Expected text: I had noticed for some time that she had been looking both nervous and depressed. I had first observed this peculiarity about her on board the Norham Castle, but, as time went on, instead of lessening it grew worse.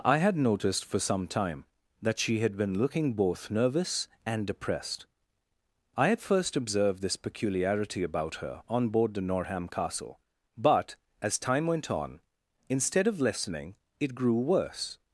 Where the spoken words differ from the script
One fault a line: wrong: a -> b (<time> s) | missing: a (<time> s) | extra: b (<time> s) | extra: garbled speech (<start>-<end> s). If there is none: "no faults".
no faults